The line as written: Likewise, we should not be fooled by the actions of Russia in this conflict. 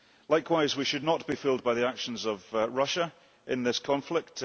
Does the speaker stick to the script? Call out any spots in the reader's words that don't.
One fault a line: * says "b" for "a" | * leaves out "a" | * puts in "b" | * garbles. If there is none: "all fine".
all fine